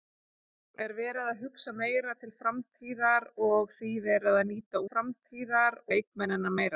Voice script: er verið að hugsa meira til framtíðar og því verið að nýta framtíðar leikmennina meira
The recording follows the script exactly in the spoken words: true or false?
true